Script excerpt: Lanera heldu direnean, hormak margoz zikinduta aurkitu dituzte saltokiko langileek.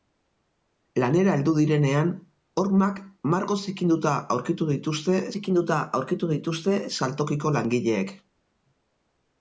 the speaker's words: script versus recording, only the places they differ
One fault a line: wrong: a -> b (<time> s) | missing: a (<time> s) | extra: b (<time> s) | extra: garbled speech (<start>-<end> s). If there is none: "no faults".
extra: zikinduta aurkitu dituzte (5.3 s)